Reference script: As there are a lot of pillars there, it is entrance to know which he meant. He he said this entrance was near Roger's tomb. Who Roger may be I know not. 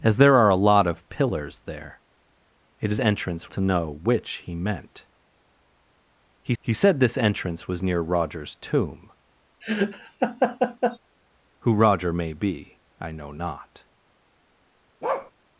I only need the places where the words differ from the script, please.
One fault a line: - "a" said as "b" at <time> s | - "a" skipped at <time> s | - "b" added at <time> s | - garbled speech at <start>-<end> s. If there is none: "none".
none